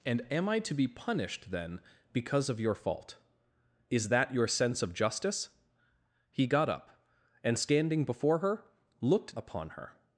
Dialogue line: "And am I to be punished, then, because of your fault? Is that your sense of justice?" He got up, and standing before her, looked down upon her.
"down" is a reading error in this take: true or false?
true